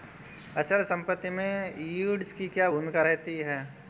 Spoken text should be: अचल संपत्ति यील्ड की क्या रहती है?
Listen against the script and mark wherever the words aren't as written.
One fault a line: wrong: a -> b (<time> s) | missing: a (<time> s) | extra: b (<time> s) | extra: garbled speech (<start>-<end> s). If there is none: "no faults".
extra: में (1.3 s)
extra: भूमिका (2.7 s)